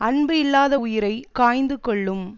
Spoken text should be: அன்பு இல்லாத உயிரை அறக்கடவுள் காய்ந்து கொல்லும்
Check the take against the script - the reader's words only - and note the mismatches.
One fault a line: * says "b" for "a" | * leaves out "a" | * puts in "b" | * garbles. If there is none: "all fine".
* leaves out "அறக்கடவுள்"